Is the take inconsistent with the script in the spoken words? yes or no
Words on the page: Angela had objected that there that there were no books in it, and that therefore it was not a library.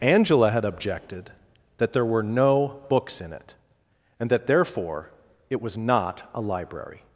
yes